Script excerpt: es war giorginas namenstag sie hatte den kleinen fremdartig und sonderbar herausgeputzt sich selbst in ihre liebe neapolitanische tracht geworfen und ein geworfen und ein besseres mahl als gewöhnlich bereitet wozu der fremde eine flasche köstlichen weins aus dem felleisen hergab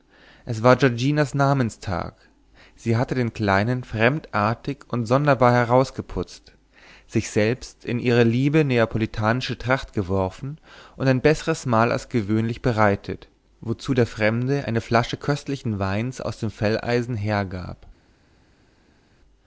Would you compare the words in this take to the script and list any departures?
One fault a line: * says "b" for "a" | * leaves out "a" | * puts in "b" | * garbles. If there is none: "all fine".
* leaves out "geworfen und ein"